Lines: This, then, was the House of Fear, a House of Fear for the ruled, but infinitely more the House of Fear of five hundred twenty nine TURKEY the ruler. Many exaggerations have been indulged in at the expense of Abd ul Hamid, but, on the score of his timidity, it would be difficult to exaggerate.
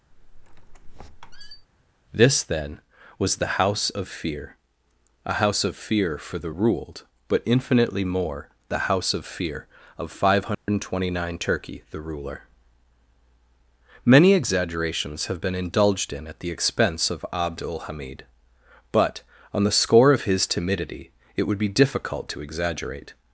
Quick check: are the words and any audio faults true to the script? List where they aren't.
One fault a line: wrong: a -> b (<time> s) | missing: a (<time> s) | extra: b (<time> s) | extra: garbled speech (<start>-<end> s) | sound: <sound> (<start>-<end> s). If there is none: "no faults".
sound: squeak (0.1-1.7 s)
sound: dropout (10.5-10.7 s)